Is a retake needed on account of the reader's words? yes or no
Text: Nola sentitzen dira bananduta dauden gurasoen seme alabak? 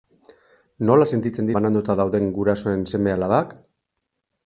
yes